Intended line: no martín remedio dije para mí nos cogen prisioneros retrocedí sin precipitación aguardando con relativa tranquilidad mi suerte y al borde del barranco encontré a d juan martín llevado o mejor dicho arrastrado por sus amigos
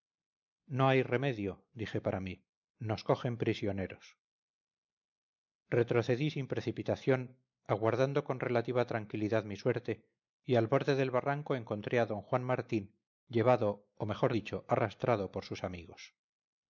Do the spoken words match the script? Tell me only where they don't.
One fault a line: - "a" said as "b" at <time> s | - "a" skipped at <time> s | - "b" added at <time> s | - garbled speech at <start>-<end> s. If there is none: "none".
- "martín" said as "hay" at 0.9 s